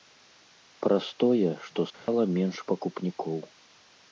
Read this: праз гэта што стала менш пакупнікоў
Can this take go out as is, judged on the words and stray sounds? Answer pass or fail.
fail